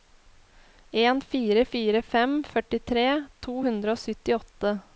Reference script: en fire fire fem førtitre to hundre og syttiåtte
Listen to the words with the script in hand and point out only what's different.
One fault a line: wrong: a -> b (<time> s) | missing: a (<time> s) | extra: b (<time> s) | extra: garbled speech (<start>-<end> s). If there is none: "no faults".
no faults